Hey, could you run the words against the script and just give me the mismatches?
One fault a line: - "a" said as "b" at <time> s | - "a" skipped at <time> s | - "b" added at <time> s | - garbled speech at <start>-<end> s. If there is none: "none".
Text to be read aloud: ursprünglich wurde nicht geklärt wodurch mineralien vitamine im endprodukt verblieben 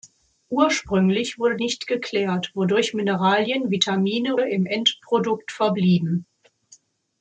none